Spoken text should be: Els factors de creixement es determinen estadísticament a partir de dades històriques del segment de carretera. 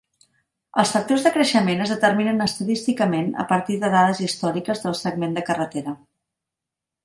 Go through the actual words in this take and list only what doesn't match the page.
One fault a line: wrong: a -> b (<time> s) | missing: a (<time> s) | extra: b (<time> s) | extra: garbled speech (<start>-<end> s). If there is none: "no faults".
no faults